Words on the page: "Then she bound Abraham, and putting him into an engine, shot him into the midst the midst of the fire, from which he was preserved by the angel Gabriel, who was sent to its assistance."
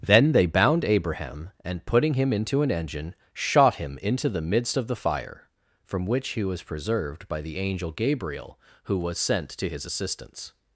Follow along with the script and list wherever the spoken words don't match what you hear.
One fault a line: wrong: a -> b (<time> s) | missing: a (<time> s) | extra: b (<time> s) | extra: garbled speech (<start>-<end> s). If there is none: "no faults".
wrong: she -> they (0.3 s)
missing: the midst (4.8 s)
wrong: its -> his (9.7 s)